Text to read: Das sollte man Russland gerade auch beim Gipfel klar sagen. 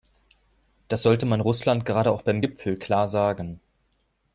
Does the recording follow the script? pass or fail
pass